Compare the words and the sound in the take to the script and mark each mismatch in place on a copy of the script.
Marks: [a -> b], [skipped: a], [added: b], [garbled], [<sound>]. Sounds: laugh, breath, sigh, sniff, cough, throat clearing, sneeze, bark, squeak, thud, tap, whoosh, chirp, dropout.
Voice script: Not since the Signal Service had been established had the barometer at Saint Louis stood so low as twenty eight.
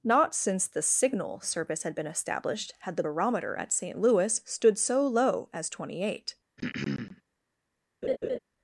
Not since the Signal Service had been established had the barometer at Saint Louis stood so low as twenty eight. [throat clearing] [laugh]